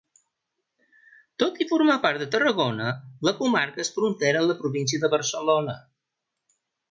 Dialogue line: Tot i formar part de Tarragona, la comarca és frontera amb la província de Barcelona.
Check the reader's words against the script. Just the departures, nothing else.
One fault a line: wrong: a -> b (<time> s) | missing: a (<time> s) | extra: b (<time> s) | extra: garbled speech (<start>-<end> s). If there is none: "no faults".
no faults